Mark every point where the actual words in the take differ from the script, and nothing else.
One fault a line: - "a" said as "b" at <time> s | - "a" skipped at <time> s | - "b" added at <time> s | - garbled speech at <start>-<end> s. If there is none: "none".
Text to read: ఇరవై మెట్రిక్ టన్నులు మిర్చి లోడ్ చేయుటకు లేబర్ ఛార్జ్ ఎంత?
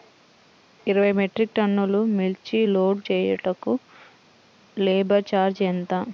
none